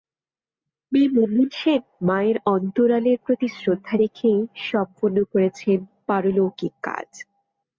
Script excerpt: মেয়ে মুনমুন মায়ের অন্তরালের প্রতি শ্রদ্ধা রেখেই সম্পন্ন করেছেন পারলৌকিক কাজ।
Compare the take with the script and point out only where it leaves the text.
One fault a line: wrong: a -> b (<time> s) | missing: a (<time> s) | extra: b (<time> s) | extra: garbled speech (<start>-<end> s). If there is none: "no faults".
extra: সেন (1.6 s)